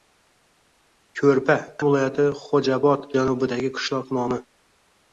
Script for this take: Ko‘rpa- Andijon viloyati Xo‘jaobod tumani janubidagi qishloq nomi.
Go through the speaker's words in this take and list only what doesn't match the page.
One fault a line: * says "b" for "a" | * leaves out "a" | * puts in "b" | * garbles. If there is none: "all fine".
* leaves out "Andijon"
* leaves out "tumani"